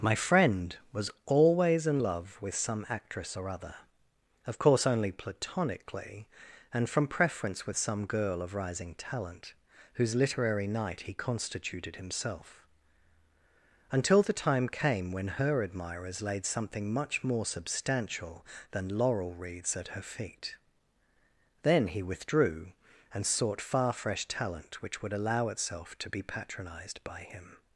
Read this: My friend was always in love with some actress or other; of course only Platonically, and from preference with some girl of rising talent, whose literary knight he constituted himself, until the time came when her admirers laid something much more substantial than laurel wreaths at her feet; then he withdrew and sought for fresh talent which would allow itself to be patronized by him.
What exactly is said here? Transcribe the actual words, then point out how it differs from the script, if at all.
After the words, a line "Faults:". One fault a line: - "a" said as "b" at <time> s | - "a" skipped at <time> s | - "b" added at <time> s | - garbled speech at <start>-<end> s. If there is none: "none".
My friend was always in love with some actress or other; of course only Platonically, and from preference with some girl of rising talent, whose literary knight he constituted himself, until the time came when her admirers laid something much more substantial than laurel wreaths at her feet; then he withdrew and sought far fresh talent which would allow itself to be patronized by him.
Faults:
- "for" said as "far" at 23.6 s